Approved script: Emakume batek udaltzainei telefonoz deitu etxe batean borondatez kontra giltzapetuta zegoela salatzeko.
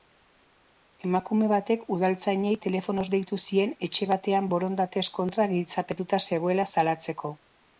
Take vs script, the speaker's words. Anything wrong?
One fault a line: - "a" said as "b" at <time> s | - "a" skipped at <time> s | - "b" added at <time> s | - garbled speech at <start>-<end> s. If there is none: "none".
- "zien" added at 3.4 s